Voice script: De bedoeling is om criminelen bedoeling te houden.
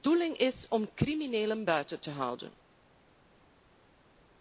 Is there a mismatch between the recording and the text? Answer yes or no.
yes